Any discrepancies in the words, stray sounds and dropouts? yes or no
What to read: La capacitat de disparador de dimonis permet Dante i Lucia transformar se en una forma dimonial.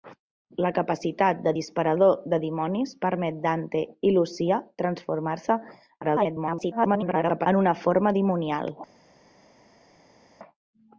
yes